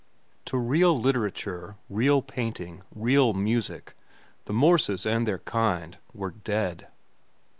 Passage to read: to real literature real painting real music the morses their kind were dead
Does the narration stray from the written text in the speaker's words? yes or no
yes